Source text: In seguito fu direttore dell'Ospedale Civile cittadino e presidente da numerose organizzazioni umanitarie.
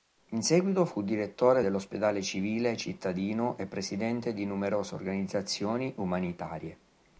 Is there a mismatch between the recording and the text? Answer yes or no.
yes